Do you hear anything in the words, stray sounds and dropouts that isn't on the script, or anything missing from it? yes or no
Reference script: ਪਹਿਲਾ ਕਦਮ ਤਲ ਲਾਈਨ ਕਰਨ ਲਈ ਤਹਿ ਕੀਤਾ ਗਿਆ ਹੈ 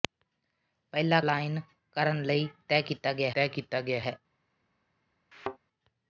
yes